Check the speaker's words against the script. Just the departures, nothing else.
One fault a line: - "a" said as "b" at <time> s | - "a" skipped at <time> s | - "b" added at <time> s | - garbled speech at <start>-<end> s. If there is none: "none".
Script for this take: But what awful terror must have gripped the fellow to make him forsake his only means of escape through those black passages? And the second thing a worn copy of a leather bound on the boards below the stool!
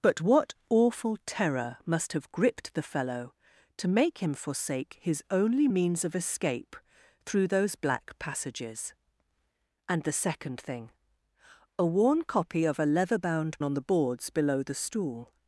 none